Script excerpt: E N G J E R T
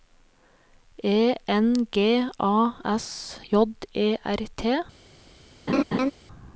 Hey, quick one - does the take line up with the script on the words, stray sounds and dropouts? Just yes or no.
no